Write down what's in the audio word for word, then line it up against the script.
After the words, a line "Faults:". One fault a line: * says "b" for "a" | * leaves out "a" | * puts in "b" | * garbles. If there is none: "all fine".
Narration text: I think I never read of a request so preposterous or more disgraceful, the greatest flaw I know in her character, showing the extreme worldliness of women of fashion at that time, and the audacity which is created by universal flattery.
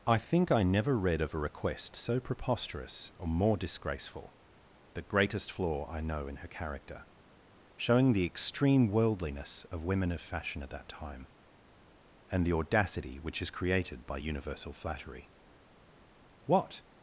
I think I never read of a request so preposterous or more disgraceful, the greatest flaw I know in her character, showing the extreme worldliness of women of fashion at that time, and the audacity which is created by universal flattery. What
Faults:
* puts in "What"